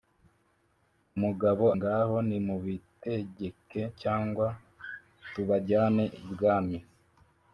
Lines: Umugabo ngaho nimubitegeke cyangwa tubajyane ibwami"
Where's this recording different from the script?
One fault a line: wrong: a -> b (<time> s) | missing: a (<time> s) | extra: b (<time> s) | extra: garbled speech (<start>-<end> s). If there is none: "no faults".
no faults